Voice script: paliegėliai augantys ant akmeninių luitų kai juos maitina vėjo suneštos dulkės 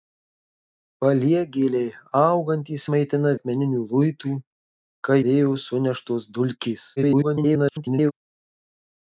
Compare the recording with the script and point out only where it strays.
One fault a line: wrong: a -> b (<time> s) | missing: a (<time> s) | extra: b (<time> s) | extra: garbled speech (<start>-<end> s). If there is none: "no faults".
wrong: ant -> maitina (3.0 s)
missing: juos maitina (5.2 s)
extra: garbled speech (7.0-8.1 s)